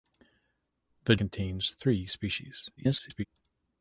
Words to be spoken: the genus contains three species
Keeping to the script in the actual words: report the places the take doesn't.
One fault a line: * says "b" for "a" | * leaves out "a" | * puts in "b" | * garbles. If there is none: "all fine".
* leaves out "genus"
* garbles